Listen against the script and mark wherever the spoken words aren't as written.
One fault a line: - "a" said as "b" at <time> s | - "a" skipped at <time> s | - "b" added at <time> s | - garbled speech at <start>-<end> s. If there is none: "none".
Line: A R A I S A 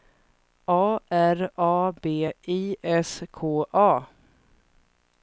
- "B" added at 2.0 s
- "K" added at 3.3 s